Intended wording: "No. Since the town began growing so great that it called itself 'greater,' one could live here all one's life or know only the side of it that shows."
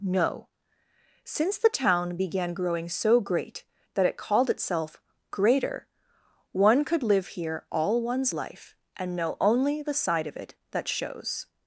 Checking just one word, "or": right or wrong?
wrong